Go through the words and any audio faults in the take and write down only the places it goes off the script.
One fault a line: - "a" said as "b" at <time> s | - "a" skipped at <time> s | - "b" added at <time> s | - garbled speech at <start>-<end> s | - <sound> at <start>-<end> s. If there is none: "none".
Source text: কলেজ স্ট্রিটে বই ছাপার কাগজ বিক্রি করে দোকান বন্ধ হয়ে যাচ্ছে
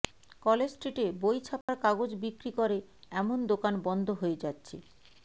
- dropout at 1.6-1.7 s
- "এমন" added at 3.1 s